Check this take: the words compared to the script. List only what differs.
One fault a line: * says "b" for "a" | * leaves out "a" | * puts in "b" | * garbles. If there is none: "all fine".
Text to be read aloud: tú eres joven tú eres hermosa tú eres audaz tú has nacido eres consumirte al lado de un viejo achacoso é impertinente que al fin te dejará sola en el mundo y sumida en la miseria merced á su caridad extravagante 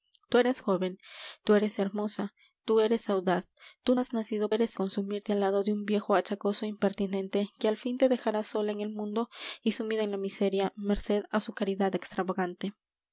all fine